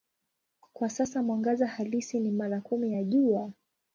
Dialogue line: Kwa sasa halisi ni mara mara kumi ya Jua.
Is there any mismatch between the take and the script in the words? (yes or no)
yes